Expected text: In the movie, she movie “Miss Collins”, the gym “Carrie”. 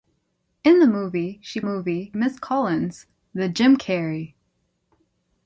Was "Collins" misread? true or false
false